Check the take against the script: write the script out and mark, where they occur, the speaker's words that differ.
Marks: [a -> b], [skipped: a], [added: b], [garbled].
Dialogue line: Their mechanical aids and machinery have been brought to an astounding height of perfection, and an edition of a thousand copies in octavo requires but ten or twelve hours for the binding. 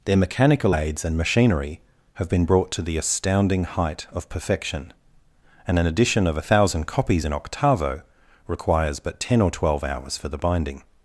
Their mechanical aids and machinery have been brought to [an -> the] astounding height of perfection, and an edition of a thousand copies in octavo requires but ten or twelve hours for the binding.